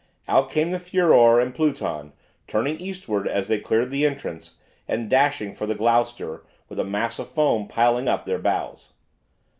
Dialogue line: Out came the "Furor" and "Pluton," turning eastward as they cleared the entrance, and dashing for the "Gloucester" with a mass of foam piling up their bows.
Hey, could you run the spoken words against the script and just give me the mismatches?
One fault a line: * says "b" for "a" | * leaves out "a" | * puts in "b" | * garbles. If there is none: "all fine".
all fine